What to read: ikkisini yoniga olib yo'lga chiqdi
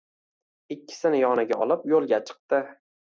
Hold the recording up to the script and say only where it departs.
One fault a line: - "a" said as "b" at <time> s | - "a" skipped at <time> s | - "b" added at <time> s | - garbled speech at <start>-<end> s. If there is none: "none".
none